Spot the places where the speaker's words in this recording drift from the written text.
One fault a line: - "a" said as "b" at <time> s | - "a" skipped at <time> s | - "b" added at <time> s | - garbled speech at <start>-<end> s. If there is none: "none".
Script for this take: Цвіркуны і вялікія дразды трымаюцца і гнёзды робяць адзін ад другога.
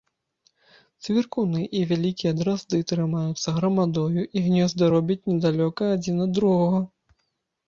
- "грамадою" added at 3.6 s
- "недалёка" added at 5.3 s